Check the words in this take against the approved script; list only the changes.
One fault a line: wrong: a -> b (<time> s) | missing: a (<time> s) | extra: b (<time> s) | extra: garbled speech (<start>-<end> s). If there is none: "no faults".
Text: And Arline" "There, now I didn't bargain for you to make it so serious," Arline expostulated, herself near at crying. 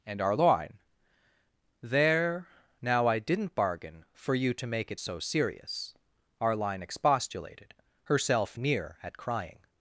no faults